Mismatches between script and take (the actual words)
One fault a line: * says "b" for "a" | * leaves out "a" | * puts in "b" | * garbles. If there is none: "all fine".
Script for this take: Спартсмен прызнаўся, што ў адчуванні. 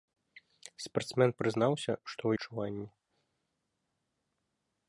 all fine